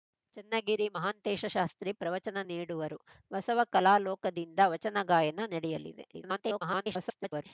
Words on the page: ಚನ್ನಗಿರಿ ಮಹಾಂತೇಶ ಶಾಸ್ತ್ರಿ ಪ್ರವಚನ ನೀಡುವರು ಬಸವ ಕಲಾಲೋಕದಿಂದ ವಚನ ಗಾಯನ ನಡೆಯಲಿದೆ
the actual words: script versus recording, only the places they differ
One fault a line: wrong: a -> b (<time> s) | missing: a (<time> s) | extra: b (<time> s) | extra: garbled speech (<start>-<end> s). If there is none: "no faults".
extra: garbled speech (6.1-7.4 s)